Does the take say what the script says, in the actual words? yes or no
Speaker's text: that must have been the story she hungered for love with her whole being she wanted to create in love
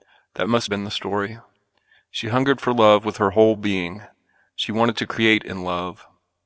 no